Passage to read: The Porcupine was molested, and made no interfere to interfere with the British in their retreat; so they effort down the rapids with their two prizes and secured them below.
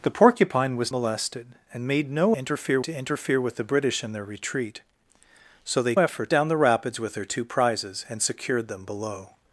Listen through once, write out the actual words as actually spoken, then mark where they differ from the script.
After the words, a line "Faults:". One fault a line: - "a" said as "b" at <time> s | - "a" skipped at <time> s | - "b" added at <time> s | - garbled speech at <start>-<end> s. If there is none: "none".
The Porcupine was molested, and made no interfere to interfere with the British in their retreat; so they effort down the rapids with their two prizes and secured them below.
Faults:
none